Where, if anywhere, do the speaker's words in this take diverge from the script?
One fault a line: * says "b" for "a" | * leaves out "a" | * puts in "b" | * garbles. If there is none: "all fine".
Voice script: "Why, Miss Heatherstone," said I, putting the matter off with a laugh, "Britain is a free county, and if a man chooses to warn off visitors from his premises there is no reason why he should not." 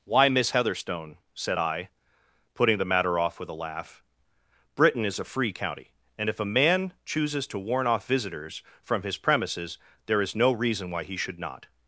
all fine